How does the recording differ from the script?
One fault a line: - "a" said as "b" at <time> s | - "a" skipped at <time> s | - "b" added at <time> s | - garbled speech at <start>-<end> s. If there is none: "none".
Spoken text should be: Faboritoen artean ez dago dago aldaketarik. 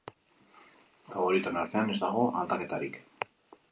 - "dago" skipped at 2.2 s